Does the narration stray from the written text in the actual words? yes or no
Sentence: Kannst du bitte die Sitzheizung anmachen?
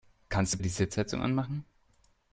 yes